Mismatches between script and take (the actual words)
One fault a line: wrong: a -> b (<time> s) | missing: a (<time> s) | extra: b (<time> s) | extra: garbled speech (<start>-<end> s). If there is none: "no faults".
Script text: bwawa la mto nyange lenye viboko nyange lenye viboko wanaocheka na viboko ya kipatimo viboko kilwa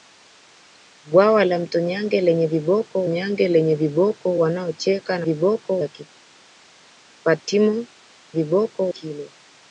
no faults